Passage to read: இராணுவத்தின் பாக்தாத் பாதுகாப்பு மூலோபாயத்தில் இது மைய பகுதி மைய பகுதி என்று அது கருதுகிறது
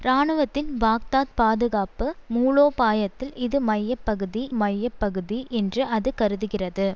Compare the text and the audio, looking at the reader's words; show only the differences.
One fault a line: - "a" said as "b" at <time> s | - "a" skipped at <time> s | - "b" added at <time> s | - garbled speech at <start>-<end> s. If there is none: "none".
none